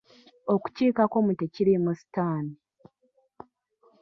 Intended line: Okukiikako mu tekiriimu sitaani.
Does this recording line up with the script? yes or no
yes